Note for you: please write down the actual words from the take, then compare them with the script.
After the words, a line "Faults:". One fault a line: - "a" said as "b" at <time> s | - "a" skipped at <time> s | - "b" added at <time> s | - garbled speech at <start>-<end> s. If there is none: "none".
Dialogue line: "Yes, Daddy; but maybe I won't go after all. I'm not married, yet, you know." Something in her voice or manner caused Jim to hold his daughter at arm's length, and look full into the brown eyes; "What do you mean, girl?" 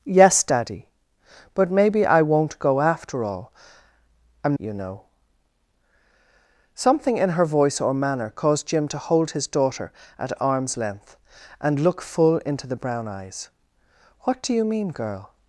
"Yes, Daddy; but maybe I won't go after all. I'm you know." Something in her voice or manner caused Jim to hold his daughter at arm's length, and look full into the brown eyes; "What do you mean, girl?"
Faults:
- "not married yet" skipped at 4.5 s